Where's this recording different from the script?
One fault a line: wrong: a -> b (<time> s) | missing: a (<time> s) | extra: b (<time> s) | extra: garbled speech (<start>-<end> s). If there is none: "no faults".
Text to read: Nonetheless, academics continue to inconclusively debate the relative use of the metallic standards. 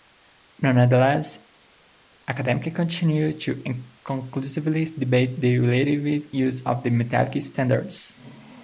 no faults